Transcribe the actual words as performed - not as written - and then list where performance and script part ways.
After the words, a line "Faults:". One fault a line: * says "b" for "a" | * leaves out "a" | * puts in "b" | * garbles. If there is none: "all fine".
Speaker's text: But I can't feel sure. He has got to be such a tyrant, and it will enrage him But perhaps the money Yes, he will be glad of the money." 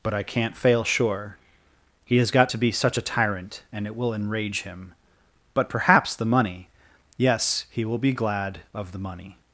But I can't fail sure. He has got to be such a tyrant, and it will enrage him But perhaps the money Yes, he will be glad of the money."
Faults:
* says "fail" for "feel"